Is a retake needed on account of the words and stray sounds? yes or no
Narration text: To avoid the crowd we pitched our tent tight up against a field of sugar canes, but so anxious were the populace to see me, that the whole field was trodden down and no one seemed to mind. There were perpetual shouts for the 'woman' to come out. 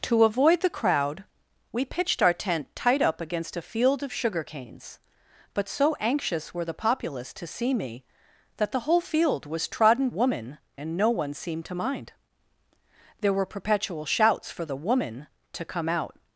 yes